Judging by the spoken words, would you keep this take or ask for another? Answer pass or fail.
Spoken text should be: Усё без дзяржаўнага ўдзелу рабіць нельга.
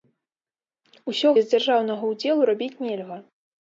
pass